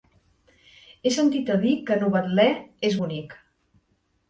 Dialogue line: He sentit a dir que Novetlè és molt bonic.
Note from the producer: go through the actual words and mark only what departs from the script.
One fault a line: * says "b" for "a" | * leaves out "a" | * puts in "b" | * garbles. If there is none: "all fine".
* leaves out "molt"